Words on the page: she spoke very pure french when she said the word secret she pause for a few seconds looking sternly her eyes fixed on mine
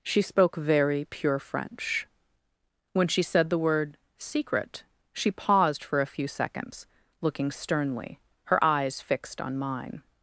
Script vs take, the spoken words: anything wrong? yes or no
yes